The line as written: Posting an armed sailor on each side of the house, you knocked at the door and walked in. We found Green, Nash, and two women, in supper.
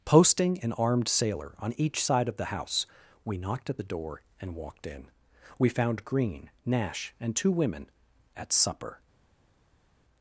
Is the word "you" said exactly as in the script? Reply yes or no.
no